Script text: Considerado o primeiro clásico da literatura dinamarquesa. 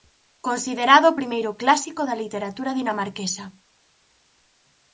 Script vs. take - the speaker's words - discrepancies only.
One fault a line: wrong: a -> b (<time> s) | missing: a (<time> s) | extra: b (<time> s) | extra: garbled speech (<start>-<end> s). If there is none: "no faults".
no faults